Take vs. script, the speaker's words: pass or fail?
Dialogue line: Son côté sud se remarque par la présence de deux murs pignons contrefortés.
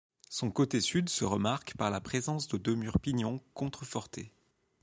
pass